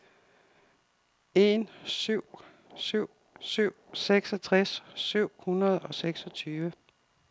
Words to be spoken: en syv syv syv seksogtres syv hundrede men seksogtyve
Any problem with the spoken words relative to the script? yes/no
yes